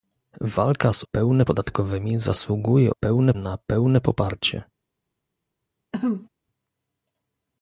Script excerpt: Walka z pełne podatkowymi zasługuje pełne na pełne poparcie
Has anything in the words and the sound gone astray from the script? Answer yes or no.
yes